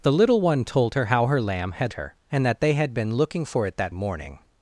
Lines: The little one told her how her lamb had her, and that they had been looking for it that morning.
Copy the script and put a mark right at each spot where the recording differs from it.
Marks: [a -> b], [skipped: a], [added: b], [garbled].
The little one told her how her lamb had her, and that they had been looking for it that morning.